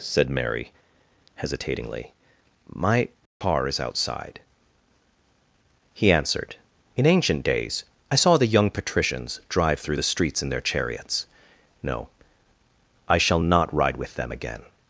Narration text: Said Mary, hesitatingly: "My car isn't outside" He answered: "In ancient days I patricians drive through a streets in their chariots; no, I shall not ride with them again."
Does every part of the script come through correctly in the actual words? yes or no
no